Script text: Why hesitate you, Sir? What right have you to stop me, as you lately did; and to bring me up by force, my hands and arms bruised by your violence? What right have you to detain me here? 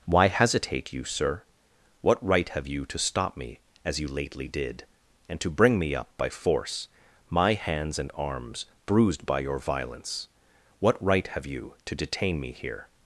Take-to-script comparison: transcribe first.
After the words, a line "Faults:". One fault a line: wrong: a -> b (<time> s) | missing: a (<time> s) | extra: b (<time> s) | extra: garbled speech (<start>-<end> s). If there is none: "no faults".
Why hesitate you, Sir? What right have you to stop me, as you lately did; and to bring me up by force, my hands and arms bruised by your violence? What right have you to detain me here?
Faults:
no faults